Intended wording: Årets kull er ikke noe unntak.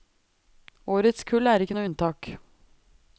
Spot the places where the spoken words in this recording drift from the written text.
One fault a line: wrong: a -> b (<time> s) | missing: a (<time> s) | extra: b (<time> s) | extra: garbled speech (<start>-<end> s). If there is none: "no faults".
no faults